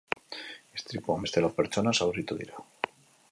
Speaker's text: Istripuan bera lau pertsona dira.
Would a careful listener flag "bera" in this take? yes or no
yes